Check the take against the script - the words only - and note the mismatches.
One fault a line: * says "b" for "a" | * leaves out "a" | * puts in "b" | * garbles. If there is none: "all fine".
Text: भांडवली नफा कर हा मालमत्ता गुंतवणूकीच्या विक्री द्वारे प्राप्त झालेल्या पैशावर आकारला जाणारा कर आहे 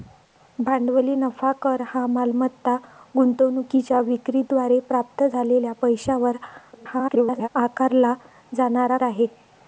* garbles
* leaves out "कर"